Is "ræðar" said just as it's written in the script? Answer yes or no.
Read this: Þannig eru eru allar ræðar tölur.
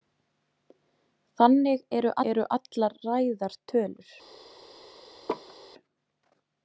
yes